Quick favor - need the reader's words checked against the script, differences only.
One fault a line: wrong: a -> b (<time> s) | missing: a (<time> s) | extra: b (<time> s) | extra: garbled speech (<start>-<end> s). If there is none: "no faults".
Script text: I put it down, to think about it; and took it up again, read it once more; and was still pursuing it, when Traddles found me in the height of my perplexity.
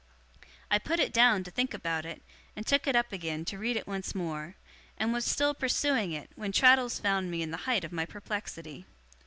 extra: to (3.5 s)